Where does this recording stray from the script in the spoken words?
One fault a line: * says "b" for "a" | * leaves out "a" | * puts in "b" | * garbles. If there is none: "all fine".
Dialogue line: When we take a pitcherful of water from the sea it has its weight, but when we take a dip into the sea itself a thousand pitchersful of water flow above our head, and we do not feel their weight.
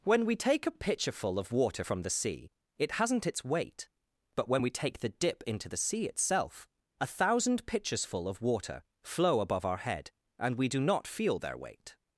* says "hasn't" for "has"
* says "the" for "a"